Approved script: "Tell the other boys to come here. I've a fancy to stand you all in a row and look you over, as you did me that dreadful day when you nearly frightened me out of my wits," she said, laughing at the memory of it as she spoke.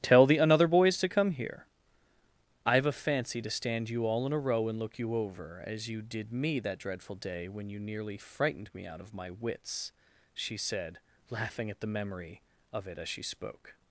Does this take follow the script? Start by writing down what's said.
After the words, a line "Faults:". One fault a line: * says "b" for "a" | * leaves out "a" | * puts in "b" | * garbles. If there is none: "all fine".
"Tell the another boys to come here. I've a fancy to stand you all in a row and look you over, as you did me that dreadful day when you nearly frightened me out of my wits," she said, laughing at the memory of it as she spoke.
Faults:
* says "another" for "other"